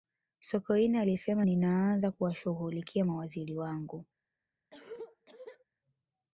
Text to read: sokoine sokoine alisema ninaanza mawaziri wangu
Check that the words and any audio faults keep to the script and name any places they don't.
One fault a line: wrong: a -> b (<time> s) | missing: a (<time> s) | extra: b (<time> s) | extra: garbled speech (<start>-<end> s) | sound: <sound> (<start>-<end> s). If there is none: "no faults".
missing: sokoine (1.0 s)
extra: kuwashughulikia (2.1 s)
sound: cough (4.7-5.7 s)